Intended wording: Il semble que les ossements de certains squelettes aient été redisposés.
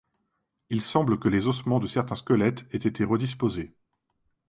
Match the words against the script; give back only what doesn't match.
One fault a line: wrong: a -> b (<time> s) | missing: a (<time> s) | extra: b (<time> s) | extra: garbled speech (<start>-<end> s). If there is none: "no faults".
no faults